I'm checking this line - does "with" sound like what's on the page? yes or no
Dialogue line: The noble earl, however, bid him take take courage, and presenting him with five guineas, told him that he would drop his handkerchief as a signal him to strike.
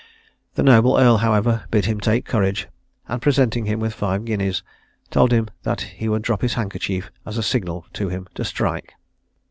yes